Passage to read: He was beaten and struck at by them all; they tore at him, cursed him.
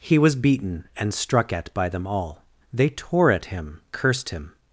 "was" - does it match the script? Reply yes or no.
yes